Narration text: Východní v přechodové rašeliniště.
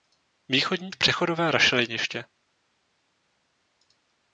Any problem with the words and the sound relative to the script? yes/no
no